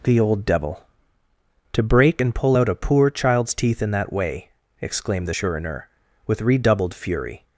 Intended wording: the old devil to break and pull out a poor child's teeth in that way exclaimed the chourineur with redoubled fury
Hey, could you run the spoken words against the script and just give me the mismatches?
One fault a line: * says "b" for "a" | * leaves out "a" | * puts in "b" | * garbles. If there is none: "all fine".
all fine